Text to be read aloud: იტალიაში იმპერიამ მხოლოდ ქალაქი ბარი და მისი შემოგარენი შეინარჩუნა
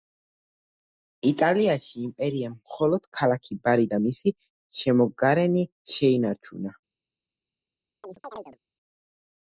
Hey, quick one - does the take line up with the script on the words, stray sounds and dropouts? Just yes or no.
no